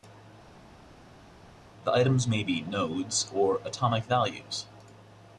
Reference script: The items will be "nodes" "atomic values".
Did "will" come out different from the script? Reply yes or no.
yes